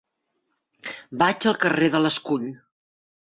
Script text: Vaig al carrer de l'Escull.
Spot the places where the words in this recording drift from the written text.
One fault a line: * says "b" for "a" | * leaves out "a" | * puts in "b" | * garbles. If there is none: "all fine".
all fine